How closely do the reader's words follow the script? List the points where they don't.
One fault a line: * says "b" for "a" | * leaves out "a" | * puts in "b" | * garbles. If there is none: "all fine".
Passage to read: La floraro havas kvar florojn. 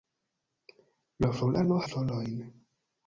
* leaves out "havas kvar"